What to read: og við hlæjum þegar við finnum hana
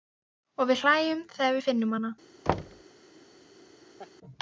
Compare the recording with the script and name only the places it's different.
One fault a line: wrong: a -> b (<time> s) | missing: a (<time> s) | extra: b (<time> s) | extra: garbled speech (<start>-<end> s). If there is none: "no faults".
no faults